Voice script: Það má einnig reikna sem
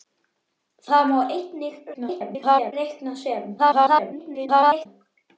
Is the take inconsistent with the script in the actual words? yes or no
yes